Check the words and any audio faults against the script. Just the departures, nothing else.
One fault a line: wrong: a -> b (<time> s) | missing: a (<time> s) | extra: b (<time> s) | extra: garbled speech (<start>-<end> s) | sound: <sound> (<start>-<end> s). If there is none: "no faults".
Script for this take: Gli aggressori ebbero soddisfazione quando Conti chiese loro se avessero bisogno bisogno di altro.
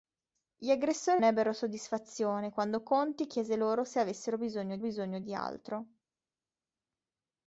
no faults